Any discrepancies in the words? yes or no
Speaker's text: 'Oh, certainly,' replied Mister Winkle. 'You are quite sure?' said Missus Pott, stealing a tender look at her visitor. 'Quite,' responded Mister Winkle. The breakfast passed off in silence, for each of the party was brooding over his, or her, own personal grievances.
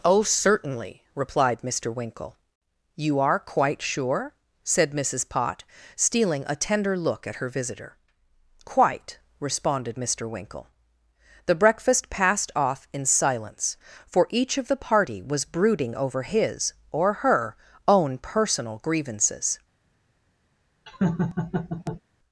no